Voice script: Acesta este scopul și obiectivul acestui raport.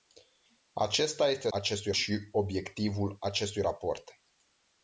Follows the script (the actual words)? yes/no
no